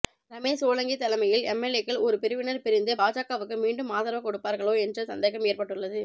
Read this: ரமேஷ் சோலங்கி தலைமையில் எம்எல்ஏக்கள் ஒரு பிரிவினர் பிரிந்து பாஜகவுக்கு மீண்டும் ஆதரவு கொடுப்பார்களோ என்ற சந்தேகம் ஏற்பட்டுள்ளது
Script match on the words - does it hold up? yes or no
yes